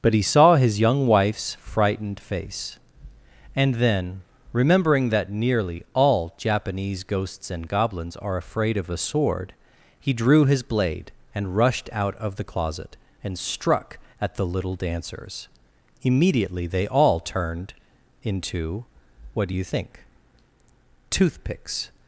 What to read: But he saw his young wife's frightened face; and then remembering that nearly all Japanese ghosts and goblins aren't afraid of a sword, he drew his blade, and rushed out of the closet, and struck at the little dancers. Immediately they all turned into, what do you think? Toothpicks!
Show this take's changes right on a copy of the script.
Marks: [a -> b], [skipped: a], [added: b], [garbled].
But he saw his young wife's frightened face; and then remembering that nearly all Japanese ghosts and goblins [aren't -> are] afraid of a sword, he drew his blade, and rushed out of the closet, and struck at the little dancers. Immediately they all turned into, what do you think? Toothpicks!